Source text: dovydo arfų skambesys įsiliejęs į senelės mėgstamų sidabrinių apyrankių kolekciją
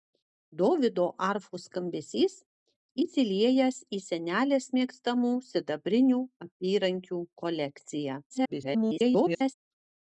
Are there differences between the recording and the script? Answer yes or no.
yes